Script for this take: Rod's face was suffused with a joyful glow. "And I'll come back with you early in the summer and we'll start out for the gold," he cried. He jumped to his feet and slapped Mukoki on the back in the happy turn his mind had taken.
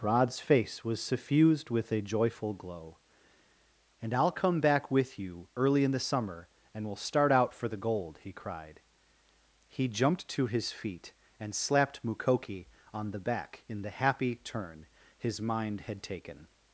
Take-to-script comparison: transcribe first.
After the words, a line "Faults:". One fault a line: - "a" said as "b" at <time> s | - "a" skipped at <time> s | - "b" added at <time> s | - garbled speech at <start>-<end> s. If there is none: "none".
Rod's face was suffused with a joyful glow. "And I'll come back with you early in the summer and we'll start out for the gold," he cried. He jumped to his feet and slapped Mukoki on the back in the happy turn his mind had taken.
Faults:
none